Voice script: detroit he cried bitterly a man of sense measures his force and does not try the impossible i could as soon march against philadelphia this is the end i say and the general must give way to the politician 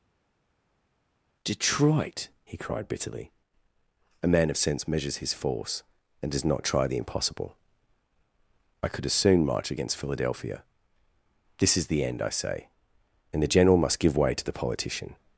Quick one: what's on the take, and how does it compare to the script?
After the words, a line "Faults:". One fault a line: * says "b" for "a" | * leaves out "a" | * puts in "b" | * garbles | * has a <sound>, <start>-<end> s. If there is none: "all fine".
detroit he cried bitterly a man of sense measures his force and does not try the impossible i could as soon march against philadelphia this is the end i say and the general must give way to the politician
Faults:
all fine